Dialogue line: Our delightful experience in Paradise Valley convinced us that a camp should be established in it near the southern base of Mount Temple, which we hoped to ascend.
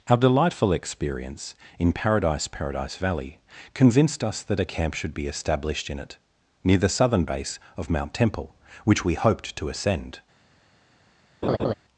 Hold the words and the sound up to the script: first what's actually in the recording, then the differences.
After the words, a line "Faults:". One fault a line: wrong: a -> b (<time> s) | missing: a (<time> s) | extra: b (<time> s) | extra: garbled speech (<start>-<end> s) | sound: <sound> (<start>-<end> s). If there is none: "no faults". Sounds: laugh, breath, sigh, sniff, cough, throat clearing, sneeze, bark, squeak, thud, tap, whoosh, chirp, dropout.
Our delightful experience in Paradise Paradise Valley convinced us that a camp should be established in it near the southern base of Mount Temple, which we hoped to ascend.
Faults:
extra: Paradise (2.5 s)
sound: laugh (11.4-11.7 s)